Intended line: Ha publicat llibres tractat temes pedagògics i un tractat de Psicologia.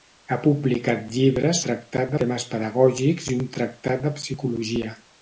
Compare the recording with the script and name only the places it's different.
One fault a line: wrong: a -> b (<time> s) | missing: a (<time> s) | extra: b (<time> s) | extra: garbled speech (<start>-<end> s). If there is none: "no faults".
no faults